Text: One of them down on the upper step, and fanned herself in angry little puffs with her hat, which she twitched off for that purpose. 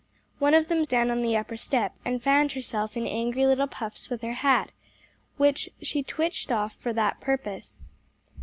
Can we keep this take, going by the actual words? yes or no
yes